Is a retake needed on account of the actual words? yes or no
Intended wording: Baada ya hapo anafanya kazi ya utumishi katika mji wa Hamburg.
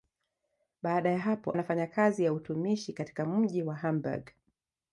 no